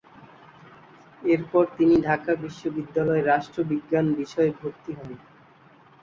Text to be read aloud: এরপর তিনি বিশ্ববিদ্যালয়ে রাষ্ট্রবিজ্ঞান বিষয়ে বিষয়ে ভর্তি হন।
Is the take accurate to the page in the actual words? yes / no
no